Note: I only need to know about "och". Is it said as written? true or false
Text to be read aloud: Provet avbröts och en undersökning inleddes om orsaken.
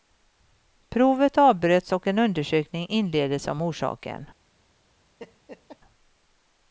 true